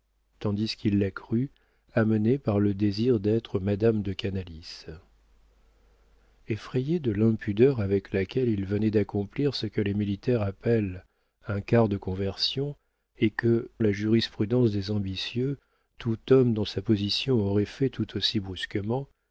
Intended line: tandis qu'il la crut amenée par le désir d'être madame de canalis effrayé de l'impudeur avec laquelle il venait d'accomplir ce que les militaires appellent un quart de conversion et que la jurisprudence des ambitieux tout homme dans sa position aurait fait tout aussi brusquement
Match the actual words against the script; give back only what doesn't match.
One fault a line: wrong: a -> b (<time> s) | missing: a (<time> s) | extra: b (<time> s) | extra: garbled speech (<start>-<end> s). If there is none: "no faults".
no faults